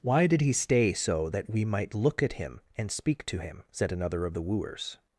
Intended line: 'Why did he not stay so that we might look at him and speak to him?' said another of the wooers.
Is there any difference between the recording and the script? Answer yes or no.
yes